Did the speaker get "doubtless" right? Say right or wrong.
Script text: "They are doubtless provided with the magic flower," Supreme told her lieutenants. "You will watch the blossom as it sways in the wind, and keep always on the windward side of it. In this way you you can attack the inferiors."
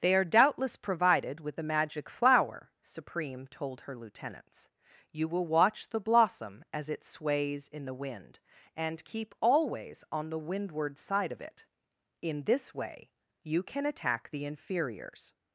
right